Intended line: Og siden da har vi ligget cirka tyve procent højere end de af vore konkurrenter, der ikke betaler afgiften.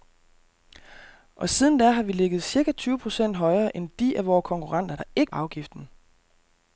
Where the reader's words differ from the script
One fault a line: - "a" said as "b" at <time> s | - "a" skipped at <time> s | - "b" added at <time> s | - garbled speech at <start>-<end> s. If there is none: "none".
- "betaler" skipped at 5.3 s